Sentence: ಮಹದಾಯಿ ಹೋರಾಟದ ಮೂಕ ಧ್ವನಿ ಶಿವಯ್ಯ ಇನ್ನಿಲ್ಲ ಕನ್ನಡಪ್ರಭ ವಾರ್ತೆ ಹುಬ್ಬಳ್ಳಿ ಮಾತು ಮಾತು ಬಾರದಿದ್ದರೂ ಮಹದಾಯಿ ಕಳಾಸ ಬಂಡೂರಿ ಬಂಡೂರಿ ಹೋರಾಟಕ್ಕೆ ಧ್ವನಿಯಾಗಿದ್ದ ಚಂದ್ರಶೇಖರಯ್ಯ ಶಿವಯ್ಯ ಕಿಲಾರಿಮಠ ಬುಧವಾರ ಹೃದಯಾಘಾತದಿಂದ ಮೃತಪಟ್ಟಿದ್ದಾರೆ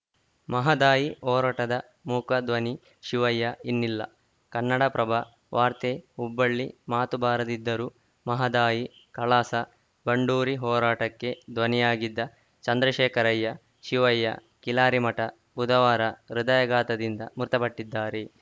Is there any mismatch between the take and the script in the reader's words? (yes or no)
yes